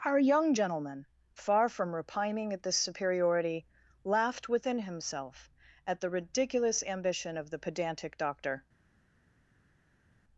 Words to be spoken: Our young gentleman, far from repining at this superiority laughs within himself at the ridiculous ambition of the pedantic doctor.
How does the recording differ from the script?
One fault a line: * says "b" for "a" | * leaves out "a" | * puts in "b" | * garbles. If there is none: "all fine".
* says "laughed" for "laughs"